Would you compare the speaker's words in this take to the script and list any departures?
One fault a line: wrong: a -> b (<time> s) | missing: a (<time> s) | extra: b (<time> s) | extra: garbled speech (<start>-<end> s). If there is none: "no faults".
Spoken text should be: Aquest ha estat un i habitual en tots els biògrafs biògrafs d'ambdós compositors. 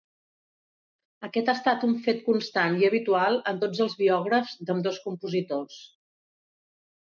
extra: fet constant (2.1 s)
missing: biògrafs (4.6 s)